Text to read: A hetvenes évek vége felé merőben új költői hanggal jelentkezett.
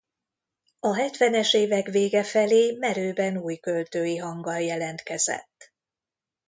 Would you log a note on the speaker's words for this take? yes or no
no